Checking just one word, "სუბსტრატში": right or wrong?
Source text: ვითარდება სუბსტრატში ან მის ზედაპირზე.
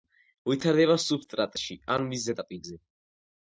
right